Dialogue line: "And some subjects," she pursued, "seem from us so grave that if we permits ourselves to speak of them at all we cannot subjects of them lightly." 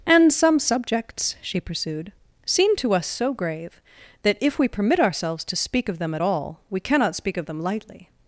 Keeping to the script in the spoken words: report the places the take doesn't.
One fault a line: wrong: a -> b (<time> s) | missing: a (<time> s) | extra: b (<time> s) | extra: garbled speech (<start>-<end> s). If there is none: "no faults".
wrong: from -> to (2.8 s)
wrong: permits -> permit (4.7 s)
wrong: subjects -> speak (7.2 s)